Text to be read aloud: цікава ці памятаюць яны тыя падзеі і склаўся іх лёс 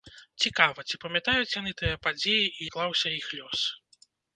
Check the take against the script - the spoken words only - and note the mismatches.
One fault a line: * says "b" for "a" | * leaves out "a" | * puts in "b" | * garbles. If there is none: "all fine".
all fine